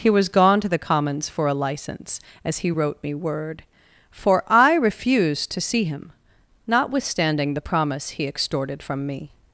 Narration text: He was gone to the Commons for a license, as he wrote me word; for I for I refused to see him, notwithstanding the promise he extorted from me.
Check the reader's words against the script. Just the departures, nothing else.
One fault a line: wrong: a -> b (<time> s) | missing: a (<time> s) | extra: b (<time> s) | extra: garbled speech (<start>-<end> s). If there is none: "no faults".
missing: for I (4.8 s)